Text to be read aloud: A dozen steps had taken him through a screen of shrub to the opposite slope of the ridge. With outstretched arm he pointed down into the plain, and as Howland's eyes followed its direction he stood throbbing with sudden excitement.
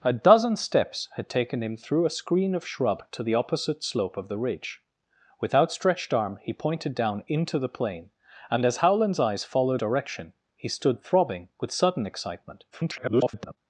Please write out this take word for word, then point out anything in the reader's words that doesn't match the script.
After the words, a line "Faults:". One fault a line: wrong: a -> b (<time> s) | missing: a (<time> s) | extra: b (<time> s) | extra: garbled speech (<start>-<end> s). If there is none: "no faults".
A dozen steps had taken him through a screen of shrub to the opposite slope of the ridge. With outstretched arm he pointed down into the plain, and as Howland's eyes followed direction he stood throbbing with sudden excitement. [garbled]
Faults:
missing: its (9.8 s)
extra: garbled speech (12.7-13.6 s)